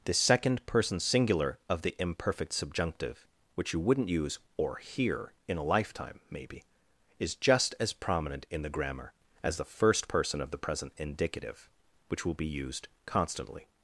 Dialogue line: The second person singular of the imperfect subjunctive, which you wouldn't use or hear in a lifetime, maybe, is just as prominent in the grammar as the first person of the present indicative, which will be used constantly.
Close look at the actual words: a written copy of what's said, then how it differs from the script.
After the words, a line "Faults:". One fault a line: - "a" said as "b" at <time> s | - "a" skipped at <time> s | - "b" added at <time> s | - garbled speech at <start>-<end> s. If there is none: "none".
The second person singular of the imperfect subjunctive, which you wouldn't use or hear in a lifetime, maybe, is just as prominent in the grammar as the first person of the present indicative, which will be used constantly.
Faults:
none